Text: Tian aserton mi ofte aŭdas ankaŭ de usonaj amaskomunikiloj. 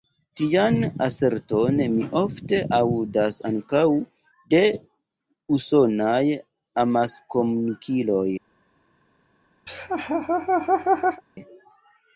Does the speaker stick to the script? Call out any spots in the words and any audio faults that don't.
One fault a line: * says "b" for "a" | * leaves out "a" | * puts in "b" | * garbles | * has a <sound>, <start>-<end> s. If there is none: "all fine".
* has a laugh, 9.7-11.2 s